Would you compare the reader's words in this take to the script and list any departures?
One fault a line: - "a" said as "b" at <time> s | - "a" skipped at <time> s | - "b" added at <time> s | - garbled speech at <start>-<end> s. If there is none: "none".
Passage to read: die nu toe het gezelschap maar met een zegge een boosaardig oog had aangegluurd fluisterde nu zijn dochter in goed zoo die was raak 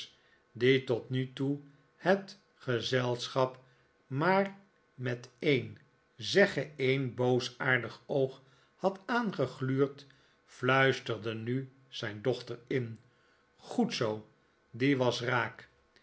- "tot" added at 0.8 s